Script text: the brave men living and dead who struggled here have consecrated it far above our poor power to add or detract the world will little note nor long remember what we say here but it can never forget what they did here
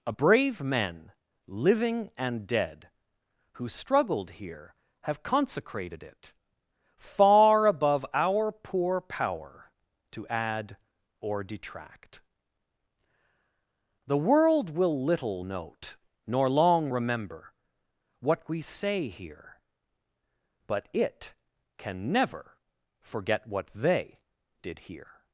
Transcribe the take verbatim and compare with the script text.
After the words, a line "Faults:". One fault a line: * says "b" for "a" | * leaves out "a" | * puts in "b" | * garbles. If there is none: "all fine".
a brave men living and dead who struggled here have consecrated it far above our poor power to add or detract the world will little note nor long remember what we say here but it can never forget what they did here
Faults:
* says "a" for "the"